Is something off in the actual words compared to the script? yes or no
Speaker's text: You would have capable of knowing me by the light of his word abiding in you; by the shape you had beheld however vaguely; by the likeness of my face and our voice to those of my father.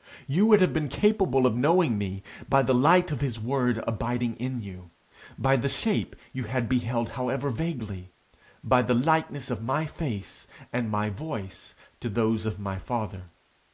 yes